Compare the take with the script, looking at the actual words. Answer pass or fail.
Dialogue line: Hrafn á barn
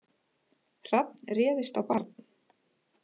fail